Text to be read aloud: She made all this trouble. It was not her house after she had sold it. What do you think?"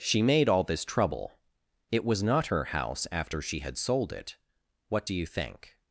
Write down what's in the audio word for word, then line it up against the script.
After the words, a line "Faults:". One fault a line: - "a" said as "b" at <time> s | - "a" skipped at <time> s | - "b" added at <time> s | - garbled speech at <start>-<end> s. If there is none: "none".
She made all this trouble. It was not her house after she had sold it. What do you think?"
Faults:
none